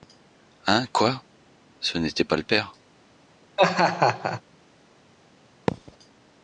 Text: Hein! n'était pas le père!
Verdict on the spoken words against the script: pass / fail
fail